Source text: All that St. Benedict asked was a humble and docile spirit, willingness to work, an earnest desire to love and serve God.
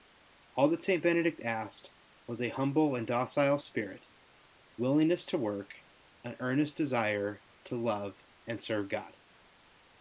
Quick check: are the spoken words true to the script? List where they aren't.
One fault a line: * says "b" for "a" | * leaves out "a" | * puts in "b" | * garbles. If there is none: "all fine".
all fine